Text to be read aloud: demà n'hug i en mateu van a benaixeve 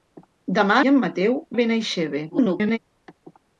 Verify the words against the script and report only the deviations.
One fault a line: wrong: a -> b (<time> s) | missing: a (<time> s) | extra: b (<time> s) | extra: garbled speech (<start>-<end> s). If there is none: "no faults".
missing: n'hug (0.8 s)
missing: van (1.3 s)
extra: garbled speech (2.3-2.8 s)